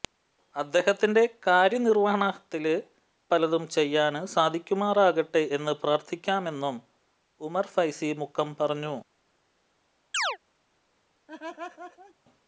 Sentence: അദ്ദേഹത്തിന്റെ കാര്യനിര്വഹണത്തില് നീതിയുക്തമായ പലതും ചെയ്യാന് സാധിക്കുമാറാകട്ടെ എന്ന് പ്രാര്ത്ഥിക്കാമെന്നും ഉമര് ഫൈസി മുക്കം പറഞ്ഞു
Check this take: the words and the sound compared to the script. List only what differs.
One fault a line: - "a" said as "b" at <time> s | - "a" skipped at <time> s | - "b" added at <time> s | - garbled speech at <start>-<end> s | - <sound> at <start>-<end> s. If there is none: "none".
- "നീതിയുക്തമായ" skipped at 2.7 s
- chirp at 10.1-10.4 s
- laugh at 11.3-12.1 s